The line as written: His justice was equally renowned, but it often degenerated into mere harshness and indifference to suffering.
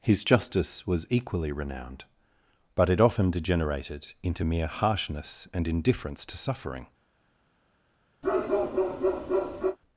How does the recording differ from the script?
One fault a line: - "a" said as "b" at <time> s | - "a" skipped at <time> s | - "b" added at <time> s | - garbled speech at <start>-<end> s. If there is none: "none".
none